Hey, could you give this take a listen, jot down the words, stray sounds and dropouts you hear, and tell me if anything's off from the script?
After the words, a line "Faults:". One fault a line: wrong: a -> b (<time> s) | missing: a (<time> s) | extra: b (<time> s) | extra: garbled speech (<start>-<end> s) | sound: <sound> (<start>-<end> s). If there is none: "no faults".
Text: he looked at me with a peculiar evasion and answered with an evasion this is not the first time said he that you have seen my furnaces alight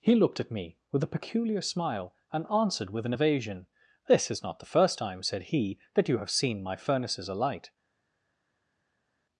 he looked at me with a peculiar smile and answered with an evasion this is not the first time said he that you have seen my furnaces alight
Faults:
wrong: evasion -> smile (1.6 s)